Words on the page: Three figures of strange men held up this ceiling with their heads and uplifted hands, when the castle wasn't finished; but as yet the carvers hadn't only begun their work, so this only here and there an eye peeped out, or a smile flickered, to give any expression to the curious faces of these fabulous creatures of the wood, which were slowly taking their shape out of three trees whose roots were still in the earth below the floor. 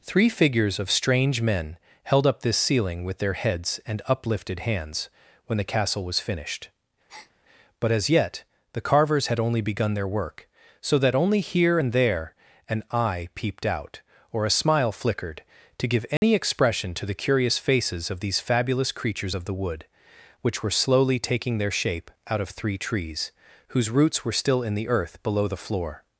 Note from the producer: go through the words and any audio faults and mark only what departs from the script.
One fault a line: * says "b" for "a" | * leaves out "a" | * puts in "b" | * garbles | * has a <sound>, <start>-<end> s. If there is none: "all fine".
* says "was" for "wasn't"
* has a breath, 7.1-7.3 s
* says "had" for "hadn't"
* says "that" for "this"
* has a dropout, 16.2-16.2 s